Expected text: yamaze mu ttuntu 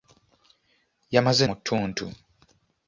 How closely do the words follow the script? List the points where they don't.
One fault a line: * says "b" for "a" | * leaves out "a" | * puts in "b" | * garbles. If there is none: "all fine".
all fine